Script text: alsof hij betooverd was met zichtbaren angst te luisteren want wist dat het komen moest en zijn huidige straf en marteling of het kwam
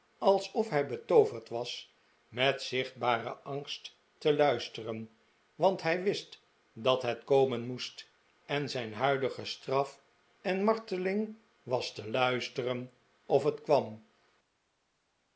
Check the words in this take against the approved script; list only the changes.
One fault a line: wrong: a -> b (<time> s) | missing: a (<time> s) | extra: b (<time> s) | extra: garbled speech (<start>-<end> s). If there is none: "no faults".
extra: hij (5.8 s)
extra: was te luisteren (11.6 s)